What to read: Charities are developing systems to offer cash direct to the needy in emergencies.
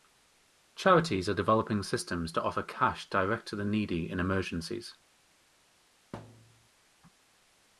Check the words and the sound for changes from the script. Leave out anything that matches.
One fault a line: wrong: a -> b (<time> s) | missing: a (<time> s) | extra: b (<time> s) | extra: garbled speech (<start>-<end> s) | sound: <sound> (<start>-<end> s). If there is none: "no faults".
sound: thud (6.1-6.7 s)